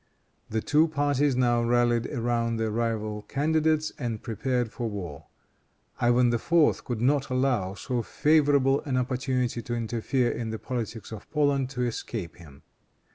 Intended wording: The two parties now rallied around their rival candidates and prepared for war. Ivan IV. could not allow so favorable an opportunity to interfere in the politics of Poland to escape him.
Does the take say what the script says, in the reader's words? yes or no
yes